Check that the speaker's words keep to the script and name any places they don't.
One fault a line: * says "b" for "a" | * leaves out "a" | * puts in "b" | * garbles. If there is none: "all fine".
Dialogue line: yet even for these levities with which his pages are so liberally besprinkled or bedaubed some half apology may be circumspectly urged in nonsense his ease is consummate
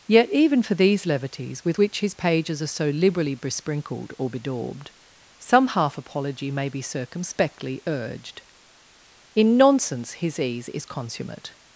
all fine